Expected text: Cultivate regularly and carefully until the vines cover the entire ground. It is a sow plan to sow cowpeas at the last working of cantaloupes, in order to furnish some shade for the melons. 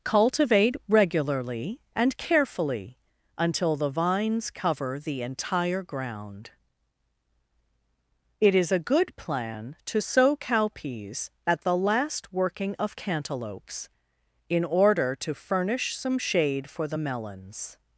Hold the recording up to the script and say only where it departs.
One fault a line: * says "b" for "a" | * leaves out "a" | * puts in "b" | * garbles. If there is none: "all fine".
* says "good" for "sow"